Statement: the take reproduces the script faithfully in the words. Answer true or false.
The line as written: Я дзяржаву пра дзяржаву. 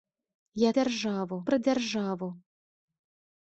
true